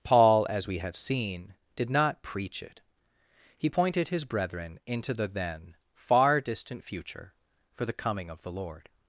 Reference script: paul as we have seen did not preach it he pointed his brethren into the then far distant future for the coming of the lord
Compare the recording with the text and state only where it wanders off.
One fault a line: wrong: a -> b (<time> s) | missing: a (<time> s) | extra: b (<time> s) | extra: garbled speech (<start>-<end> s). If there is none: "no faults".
no faults